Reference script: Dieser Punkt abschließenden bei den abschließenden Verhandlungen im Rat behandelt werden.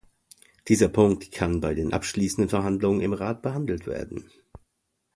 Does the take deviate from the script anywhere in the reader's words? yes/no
yes